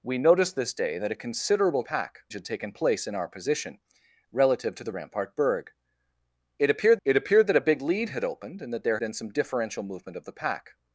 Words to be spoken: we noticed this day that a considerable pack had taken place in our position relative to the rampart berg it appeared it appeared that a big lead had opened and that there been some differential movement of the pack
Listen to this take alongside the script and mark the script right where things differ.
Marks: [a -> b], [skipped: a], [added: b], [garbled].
we noticed this day that a considerable pack had taken place in our position relative to the rampart berg it appeared it appeared that a big lead had opened and that there been some differential movement of the pack